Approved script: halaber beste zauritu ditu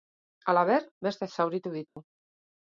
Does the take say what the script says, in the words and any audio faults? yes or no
no